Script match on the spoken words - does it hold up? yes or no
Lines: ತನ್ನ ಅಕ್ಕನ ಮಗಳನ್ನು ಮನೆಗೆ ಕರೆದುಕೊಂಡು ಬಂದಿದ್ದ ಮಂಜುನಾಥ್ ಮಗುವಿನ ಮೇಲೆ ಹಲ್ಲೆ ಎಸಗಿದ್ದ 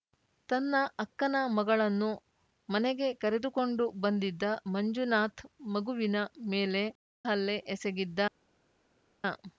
yes